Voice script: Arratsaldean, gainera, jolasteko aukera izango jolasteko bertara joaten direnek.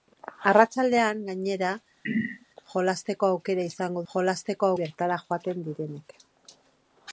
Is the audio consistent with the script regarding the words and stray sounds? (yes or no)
no